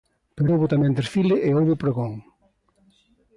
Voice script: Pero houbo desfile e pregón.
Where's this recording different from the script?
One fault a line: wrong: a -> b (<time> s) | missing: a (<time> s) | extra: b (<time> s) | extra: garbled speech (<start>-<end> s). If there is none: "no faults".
extra: tamén (0.7 s)
extra: houbo (1.6 s)